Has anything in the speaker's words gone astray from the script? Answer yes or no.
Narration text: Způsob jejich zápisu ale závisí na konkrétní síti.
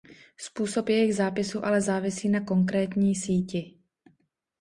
no